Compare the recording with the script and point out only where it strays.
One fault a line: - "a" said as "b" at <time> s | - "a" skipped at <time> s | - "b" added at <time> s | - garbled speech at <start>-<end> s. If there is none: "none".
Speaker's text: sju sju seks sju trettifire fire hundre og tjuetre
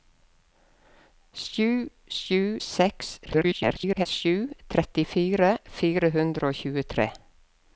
- garbled speech at 3.3-4.1 s